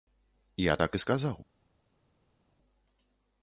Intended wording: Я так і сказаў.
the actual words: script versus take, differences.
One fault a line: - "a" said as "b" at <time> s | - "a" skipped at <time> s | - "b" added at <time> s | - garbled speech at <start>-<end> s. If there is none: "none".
none